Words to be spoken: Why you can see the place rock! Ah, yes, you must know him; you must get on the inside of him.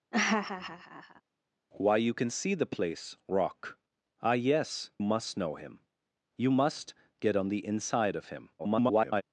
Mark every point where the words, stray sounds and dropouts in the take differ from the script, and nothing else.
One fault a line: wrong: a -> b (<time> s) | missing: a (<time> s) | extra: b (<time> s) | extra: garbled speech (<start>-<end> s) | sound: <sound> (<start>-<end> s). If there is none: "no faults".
sound: laugh (0.1-1.2 s)
missing: you (4.9 s)
extra: garbled speech (8.6-9.2 s)